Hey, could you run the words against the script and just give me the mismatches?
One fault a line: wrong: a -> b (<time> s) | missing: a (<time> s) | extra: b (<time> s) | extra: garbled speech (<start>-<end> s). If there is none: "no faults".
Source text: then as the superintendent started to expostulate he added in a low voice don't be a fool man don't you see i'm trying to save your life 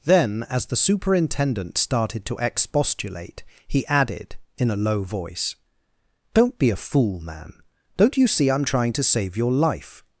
no faults